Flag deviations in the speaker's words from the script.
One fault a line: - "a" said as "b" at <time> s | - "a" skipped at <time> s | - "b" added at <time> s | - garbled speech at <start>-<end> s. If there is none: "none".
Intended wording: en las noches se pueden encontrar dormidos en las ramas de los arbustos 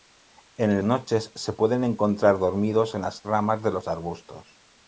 - "las" skipped at 0.8 s